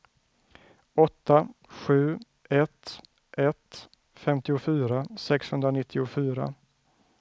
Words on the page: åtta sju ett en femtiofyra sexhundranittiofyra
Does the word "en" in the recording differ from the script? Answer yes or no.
yes